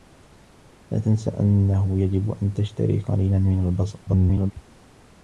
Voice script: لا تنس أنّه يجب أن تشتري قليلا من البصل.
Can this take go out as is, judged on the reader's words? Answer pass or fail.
fail